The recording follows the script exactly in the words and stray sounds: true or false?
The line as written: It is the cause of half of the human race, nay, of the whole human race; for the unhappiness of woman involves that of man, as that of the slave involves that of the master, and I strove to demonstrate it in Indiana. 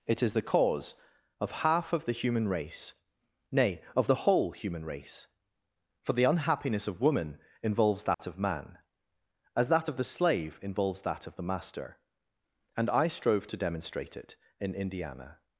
false